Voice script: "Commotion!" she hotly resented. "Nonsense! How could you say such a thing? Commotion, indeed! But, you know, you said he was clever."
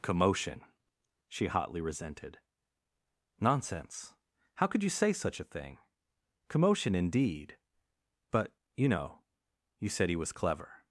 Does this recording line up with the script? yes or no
yes